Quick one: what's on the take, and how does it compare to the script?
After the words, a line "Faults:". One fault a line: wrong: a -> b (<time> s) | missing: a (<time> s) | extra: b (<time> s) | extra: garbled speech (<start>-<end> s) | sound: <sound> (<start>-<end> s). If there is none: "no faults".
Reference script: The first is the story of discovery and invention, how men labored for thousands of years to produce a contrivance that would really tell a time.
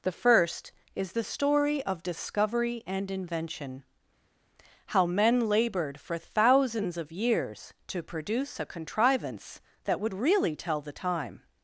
The first is the story of discovery and invention, how men labored for thousands of years to produce a contrivance that would really tell the time.
Faults:
wrong: a -> the (10.8 s)